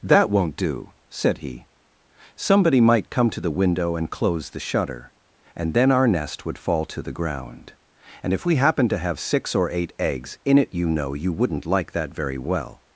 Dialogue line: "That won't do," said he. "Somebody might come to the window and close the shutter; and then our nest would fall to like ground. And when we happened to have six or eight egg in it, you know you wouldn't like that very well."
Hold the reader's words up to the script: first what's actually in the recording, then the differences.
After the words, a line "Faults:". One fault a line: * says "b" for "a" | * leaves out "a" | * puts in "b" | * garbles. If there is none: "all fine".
"That won't do," said he. "Somebody might come to the window and close the shutter; and then our nest would fall to the ground. And if we happened to have six or eight eggs in it, you know you wouldn't like that very well."
Faults:
* says "the" for "like"
* says "if" for "when"
* says "eggs" for "egg"